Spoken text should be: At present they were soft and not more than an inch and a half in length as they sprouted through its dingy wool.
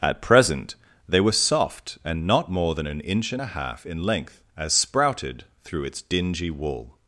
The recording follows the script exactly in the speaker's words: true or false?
false